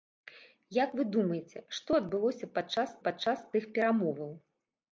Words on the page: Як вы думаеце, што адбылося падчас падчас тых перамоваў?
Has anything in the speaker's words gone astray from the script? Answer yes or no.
no